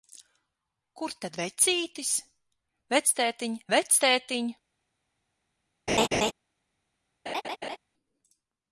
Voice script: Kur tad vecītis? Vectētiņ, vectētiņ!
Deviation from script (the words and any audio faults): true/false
true